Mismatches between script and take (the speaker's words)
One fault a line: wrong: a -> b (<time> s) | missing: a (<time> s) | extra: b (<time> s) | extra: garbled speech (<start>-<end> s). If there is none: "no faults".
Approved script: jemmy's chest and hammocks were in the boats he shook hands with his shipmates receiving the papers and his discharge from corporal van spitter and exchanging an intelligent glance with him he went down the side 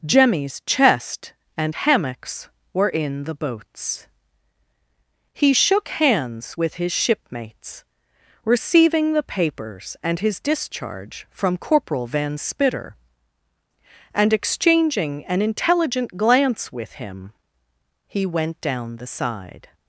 no faults